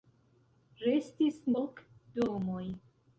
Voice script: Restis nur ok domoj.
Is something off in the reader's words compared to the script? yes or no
yes